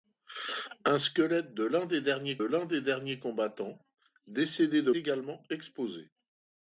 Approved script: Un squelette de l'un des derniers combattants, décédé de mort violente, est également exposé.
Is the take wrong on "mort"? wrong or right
wrong